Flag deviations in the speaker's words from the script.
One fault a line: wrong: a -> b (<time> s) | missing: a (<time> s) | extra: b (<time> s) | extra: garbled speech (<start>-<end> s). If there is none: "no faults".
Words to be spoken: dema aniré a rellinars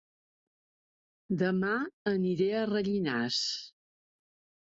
no faults